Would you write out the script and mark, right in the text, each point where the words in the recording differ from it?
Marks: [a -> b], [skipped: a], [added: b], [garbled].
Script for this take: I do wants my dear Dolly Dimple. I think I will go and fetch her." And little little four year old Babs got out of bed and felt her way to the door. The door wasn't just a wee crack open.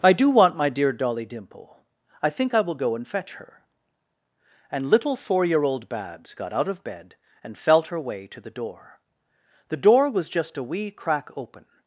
I do [wants -> want] my dear Dolly Dimple. I think I will go and fetch her." And little [skipped: little] four year old Babs got out of bed and felt her way to the door. The door [wasn't -> was] just a wee crack open.